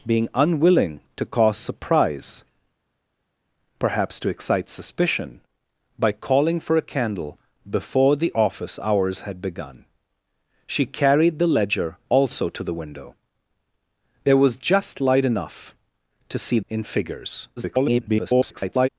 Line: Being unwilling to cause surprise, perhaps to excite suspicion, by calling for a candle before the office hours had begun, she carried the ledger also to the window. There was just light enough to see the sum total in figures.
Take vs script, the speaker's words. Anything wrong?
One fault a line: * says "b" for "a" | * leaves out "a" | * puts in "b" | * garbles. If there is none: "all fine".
* leaves out "the sum total"
* garbles